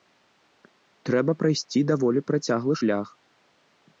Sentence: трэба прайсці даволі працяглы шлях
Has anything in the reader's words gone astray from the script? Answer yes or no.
no